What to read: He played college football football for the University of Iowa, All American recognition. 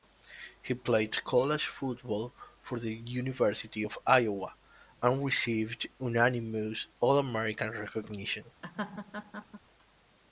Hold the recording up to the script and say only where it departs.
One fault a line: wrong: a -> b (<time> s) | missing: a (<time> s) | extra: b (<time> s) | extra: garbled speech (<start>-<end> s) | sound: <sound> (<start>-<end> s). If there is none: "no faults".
missing: football (2.3 s)
extra: and received unanimous (5.0 s)
sound: laugh (8.6-9.6 s)